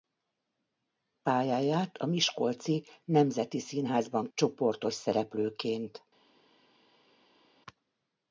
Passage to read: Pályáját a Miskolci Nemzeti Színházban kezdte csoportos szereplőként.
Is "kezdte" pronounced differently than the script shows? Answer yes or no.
yes